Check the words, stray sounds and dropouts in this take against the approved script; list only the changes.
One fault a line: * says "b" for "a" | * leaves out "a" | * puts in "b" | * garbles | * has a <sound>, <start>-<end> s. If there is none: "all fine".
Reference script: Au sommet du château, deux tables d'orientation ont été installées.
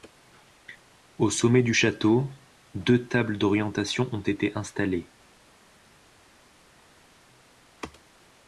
all fine